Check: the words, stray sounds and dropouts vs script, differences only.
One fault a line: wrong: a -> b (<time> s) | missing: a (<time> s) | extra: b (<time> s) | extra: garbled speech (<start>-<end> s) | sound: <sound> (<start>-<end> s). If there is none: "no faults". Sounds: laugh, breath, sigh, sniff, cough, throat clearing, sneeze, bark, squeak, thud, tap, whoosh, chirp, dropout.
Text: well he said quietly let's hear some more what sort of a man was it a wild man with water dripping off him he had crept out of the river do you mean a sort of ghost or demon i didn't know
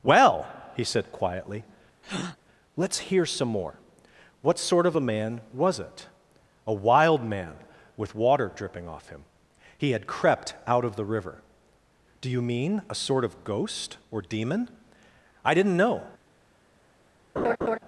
sound: breath (2.0-2.4 s)
sound: laugh (17.4-17.8 s)